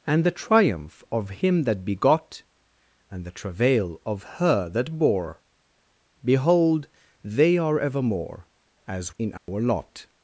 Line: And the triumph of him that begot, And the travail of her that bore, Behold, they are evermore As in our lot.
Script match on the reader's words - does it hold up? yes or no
yes